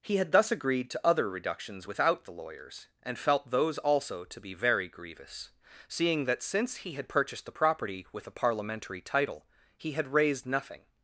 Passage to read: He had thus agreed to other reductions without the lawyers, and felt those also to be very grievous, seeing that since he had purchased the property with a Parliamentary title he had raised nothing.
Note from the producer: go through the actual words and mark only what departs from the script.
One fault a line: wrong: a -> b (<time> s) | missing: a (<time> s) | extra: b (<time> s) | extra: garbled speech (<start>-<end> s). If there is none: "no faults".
no faults